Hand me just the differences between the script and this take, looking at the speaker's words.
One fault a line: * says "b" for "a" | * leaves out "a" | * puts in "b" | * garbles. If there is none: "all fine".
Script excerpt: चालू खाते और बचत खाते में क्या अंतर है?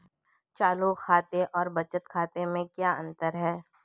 all fine